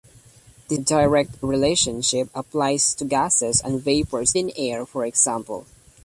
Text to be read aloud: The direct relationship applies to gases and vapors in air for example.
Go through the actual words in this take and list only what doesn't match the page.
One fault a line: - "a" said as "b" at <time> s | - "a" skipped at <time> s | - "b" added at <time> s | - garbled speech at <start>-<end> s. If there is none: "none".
none